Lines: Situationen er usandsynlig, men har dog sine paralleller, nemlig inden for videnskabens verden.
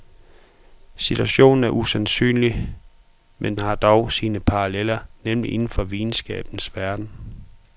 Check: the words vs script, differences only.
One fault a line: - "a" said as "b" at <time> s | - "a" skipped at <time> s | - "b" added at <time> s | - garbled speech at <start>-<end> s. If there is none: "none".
none